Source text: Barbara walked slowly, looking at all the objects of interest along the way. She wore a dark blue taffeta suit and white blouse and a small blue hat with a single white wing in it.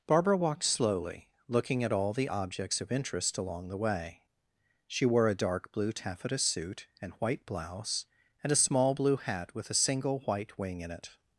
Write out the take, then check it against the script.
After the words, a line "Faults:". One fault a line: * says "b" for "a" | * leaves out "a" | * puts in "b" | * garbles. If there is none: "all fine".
Barbara walked slowly, looking at all the objects of interest along the way. She wore a dark blue taffeta suit and white blouse and a small blue hat with a single white wing in it.
Faults:
all fine